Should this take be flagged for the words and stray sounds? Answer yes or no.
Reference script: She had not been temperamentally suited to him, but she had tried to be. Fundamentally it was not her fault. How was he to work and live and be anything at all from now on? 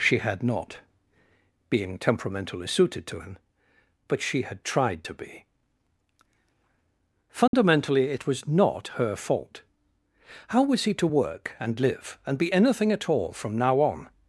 yes